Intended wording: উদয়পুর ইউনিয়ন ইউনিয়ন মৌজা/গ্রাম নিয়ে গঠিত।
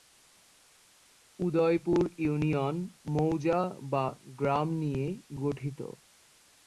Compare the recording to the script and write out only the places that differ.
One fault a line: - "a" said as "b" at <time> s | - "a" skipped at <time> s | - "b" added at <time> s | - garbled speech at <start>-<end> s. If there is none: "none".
- "ইউনিয়ন" skipped at 2.8 s